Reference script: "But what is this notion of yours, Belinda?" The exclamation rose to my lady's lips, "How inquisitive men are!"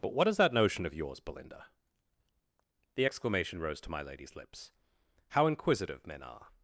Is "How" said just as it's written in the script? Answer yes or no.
yes